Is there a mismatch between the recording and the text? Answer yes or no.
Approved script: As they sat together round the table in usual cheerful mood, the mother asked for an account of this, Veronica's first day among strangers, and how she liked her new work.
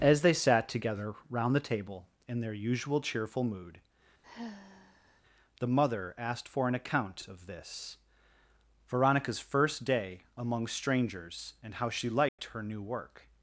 yes